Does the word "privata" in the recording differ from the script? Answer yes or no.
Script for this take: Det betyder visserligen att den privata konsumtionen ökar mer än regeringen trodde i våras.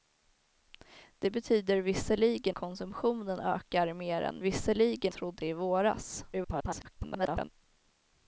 yes